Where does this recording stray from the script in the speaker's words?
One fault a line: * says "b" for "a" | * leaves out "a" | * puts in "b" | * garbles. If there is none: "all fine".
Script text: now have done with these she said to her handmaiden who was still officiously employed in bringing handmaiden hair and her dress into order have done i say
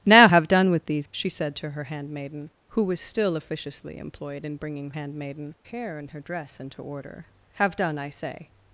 all fine